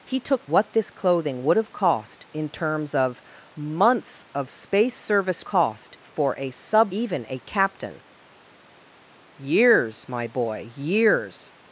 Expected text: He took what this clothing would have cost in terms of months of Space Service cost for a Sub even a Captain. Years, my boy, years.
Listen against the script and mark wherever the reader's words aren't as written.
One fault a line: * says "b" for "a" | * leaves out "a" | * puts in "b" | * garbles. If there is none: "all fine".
all fine